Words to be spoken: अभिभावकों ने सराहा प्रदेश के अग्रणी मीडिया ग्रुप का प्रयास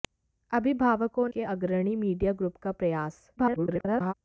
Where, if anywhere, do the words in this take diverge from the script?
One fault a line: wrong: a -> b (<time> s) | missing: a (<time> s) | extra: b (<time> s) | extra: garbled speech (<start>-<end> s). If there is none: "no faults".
missing: ने सराहा प्रदेश (1.3 s)
extra: garbled speech (3.4-4.1 s)